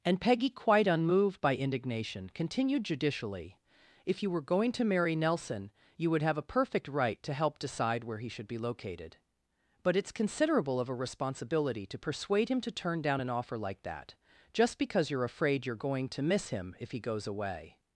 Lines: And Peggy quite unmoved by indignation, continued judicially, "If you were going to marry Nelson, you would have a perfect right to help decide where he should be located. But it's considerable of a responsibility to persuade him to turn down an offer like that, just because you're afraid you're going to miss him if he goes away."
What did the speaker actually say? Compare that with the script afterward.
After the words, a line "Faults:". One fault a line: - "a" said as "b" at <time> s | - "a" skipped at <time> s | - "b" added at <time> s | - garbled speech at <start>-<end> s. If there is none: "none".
And Peggy quite unmoved by indignation, continued judicially, "If you were going to marry Nelson, you would have a perfect right to help decide where he should be located. But it's considerable of a responsibility to persuade him to turn down an offer like that, just because you're afraid you're going to miss him if he goes away."
Faults:
none